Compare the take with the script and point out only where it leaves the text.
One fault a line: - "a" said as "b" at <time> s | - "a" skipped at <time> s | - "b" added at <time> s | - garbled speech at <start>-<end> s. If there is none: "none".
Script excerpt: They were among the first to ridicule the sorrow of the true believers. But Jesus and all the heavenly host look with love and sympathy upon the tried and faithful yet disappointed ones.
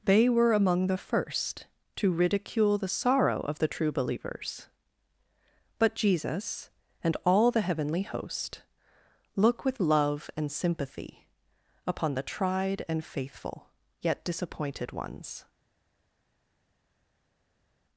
none